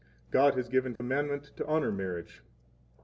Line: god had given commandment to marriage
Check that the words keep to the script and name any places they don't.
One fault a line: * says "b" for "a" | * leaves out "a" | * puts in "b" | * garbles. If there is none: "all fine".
* says "has" for "had"
* puts in "honor"